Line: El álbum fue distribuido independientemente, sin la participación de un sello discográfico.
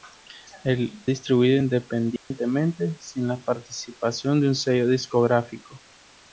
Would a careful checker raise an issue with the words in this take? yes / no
yes